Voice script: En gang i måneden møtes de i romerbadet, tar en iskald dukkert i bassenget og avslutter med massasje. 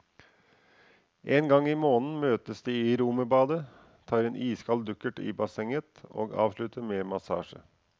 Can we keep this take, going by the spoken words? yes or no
yes